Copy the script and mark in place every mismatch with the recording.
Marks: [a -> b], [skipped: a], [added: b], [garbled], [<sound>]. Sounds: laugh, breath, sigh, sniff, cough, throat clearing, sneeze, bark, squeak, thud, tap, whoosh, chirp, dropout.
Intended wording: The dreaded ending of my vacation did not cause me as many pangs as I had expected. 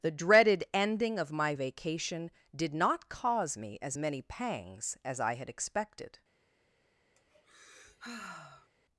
The dreaded ending of my vacation did not cause me as many pangs as I had expected. [sigh]